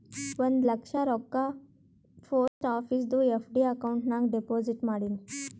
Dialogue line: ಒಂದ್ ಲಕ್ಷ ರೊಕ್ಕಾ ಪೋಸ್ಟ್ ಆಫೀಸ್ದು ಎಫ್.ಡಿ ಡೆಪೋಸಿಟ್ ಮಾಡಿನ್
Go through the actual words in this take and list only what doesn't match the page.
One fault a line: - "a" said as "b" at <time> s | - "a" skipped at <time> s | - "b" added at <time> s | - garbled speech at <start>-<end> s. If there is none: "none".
- "ಅಕೌಂಟ್ ನಾಗ್" added at 3.7 s